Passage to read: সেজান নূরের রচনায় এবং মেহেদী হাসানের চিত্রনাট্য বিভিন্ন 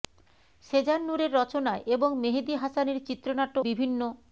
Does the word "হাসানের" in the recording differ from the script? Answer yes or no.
no